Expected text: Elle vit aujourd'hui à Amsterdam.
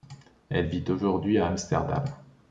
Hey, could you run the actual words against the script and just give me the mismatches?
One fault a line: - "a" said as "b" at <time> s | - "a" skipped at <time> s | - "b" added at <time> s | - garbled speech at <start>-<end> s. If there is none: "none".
none